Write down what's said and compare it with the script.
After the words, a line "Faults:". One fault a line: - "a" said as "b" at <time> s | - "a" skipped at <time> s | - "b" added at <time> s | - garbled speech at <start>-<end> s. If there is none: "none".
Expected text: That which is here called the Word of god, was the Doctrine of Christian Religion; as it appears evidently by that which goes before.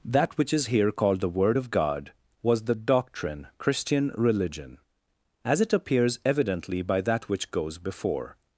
That which is here called the Word of god, was the Doctrine Christian Religion; as it appears evidently by that which goes before.
Faults:
- "of" skipped at 3.5 s